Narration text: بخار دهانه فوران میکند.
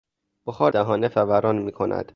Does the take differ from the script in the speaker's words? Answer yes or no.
no